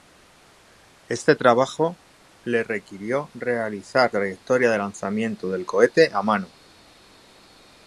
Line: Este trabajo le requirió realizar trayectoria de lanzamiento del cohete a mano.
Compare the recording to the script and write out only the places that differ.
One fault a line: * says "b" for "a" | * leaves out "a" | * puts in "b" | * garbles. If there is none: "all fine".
all fine